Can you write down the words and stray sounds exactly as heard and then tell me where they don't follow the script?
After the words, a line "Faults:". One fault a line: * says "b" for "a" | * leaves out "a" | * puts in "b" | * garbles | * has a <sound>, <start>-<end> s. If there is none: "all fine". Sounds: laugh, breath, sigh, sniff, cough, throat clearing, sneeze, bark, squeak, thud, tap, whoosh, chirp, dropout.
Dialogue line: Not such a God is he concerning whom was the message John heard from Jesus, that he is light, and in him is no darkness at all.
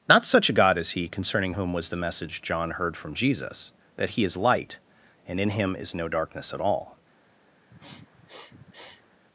Not such a God is he concerning whom was the message John heard from Jesus, that he is light, and in him is no darkness at all.
Faults:
* has a sniff, 7.7-9.2 s